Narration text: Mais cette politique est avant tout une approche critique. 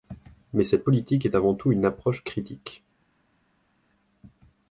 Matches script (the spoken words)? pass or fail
pass